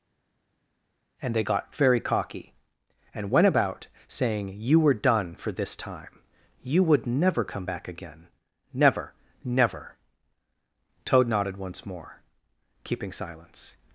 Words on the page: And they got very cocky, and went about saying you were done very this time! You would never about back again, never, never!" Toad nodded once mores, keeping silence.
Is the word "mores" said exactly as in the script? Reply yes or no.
no